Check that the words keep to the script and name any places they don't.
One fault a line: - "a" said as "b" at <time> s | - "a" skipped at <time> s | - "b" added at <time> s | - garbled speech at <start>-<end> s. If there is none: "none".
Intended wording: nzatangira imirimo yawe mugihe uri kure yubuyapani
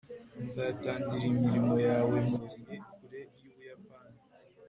- "uri" skipped at 2.8 s